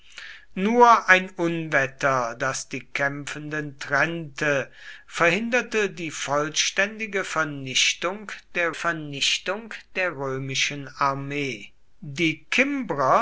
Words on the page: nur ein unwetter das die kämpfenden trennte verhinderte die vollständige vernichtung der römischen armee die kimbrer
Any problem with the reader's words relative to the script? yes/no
yes